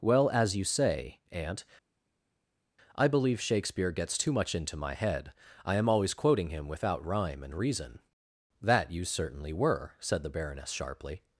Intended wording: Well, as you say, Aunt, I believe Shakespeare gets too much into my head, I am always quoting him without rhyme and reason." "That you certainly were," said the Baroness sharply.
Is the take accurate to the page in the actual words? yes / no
yes